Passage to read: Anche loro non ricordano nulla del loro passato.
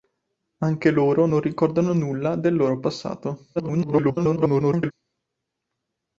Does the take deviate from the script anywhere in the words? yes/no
yes